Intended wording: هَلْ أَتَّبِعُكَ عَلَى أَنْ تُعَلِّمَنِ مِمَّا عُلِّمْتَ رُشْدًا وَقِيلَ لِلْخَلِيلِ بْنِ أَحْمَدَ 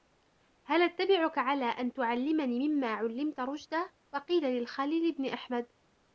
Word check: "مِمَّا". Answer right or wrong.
right